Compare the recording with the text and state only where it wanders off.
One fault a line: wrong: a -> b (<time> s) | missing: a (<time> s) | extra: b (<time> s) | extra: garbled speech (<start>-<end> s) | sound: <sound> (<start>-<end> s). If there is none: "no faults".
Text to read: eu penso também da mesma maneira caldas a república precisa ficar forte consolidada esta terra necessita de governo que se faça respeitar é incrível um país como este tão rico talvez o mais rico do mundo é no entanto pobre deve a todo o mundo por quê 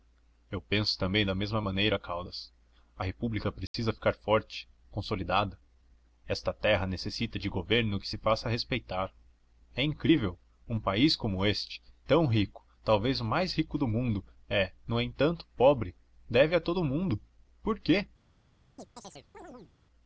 sound: dropout (3.7-3.7 s)
sound: chirp (18.8-19.7 s)